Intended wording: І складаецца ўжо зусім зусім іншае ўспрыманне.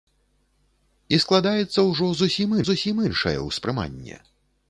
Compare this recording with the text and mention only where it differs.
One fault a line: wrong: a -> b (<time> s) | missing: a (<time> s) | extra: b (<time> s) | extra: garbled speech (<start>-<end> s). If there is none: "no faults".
no faults